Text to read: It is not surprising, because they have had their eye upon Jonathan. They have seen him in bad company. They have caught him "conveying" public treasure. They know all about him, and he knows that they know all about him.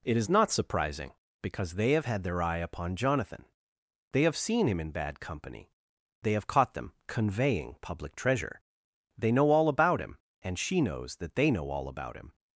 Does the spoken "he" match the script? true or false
false